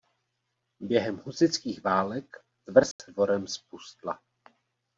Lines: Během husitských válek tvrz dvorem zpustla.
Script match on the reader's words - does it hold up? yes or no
yes